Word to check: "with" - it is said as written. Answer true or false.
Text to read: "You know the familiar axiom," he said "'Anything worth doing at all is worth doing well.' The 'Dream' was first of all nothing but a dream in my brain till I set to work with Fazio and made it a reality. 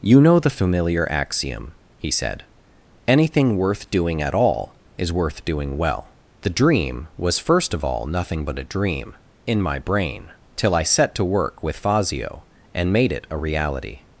true